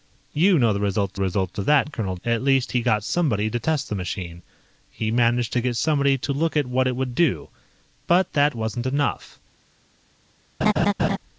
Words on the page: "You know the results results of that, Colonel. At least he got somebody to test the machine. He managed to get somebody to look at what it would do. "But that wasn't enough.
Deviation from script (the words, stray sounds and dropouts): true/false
true